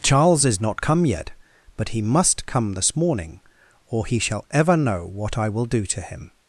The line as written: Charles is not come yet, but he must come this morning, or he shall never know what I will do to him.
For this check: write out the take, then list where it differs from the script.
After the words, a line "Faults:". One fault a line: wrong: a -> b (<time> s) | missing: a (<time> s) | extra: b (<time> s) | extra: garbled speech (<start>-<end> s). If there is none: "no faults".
Charles is not come yet, but he must come this morning, or he shall ever know what I will do to him.
Faults:
wrong: never -> ever (4.5 s)